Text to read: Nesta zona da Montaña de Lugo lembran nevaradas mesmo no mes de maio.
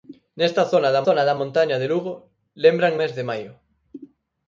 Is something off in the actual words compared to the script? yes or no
yes